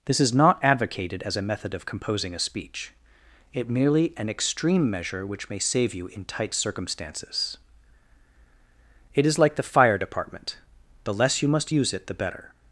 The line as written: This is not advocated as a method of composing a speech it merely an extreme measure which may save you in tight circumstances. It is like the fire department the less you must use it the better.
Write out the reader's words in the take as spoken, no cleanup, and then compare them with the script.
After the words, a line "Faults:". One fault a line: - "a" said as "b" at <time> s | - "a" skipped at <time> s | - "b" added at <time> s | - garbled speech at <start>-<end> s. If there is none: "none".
This is not advocated as a method of composing a speech it merely an extreme measure which may save you in tight circumstances. It is like the fire department the less you must use it the better.
Faults:
none